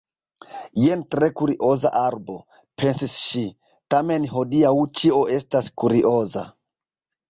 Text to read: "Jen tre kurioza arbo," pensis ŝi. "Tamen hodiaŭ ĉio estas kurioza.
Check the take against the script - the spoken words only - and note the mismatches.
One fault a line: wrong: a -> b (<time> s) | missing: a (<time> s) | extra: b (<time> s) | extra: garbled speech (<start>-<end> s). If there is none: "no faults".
no faults